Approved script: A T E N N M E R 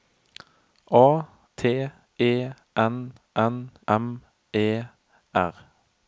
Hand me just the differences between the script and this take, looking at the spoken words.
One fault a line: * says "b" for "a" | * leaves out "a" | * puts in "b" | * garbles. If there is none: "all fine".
all fine